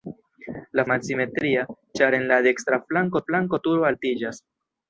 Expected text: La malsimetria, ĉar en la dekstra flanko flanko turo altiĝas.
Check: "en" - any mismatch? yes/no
no